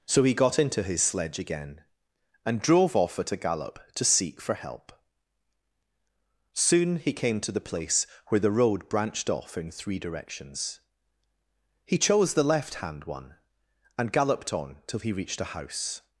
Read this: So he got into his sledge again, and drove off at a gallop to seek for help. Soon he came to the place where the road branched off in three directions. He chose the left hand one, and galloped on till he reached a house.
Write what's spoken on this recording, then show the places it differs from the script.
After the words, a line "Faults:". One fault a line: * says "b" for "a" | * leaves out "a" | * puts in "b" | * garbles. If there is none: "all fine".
So he got into his sledge again, and drove off at a gallop to seek for help. Soon he came to the place where the road branched off in three directions. He chose the left hand one, and galloped on till he reached a house.
Faults:
all fine